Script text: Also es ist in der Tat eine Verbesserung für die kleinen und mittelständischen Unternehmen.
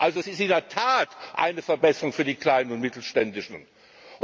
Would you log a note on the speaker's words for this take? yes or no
no